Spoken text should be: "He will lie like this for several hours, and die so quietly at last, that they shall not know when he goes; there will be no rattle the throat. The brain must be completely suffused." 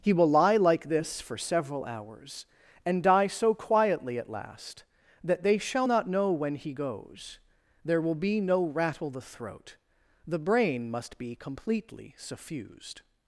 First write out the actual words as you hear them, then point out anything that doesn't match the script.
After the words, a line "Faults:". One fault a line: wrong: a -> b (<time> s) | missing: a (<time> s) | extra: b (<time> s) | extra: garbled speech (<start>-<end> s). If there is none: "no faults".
"He will lie like this for several hours, and die so quietly at last, that they shall not know when he goes; there will be no rattle the throat. The brain must be completely suffused."
Faults:
no faults